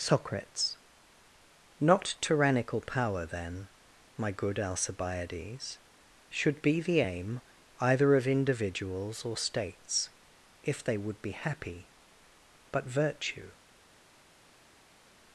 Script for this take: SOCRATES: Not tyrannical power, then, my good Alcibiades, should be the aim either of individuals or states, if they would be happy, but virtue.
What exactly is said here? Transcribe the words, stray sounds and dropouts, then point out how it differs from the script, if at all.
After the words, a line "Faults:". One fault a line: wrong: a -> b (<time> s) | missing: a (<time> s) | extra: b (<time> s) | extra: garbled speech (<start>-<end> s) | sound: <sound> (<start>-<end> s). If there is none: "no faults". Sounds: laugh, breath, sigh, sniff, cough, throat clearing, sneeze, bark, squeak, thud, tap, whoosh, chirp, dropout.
SOCRATES: Not tyrannical power, then, my good Alcibiades, should be the aim either of individuals or states, if they would be happy, but virtue.
Faults:
no faults